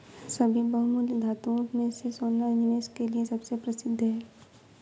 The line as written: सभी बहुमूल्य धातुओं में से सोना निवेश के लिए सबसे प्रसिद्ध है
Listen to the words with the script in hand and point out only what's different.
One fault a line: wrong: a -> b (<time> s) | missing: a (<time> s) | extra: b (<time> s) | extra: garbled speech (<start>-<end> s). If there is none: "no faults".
no faults